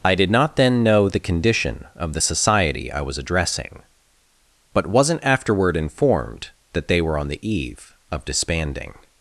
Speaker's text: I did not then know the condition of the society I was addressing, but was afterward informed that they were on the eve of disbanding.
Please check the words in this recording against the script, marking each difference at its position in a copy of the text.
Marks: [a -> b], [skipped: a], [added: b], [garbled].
I did not then know the condition of the society I was addressing, but [was -> wasn't] afterward informed that they were on the eve of disbanding.